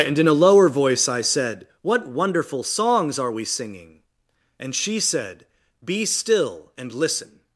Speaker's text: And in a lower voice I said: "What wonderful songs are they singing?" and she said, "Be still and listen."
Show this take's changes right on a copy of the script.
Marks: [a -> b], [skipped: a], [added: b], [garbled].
And in a lower voice I said: "What wonderful songs are [they -> we] singing?" and she said, "Be still and listen."